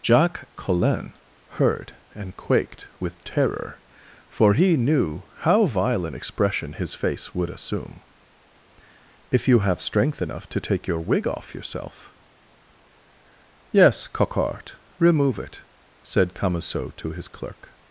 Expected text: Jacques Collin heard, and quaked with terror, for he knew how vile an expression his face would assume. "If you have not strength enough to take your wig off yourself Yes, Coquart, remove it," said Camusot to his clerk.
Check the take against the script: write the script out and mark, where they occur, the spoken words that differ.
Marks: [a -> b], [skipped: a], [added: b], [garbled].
Jacques Collin heard, and quaked with terror, for he knew how vile an expression his face would assume. "If you have [skipped: not] strength enough to take your wig off yourself Yes, Coquart, remove it," said Camusot to his clerk.